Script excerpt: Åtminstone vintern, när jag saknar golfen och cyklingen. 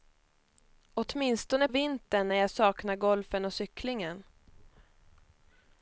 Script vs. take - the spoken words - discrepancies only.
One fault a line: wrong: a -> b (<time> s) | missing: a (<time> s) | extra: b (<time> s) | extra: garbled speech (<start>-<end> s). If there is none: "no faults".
no faults